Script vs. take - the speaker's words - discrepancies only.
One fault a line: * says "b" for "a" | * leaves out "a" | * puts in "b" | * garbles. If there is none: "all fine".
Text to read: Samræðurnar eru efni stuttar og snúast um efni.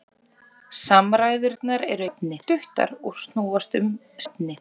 all fine